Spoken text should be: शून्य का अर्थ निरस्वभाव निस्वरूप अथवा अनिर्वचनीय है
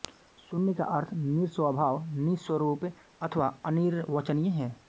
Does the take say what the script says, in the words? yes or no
yes